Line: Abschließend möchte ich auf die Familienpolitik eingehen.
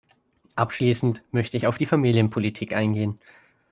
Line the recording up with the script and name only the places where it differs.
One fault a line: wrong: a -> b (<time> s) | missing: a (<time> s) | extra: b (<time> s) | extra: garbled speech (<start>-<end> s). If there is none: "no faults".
no faults